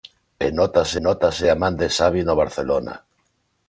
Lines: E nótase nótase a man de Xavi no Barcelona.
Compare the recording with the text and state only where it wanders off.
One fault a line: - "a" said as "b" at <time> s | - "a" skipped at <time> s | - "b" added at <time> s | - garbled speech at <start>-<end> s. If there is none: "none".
none